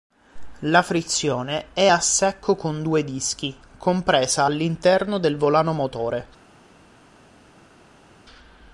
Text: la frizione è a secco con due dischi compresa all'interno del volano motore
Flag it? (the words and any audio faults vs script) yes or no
no